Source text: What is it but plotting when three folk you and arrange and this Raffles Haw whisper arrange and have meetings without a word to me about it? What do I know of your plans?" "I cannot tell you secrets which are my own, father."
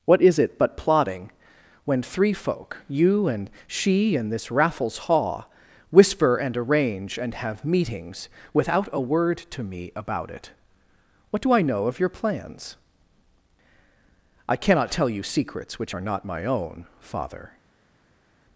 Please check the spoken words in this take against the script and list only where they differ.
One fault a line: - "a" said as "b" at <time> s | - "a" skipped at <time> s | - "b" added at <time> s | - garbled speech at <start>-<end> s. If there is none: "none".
- "arrange" said as "she" at 3.7 s
- "and" added at 6.4 s
- "not" added at 16.0 s